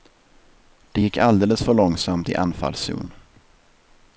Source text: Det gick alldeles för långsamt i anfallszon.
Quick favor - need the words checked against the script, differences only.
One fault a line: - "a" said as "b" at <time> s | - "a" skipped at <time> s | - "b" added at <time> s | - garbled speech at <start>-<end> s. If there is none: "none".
none